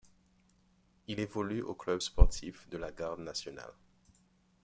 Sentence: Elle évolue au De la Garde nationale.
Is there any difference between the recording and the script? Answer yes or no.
yes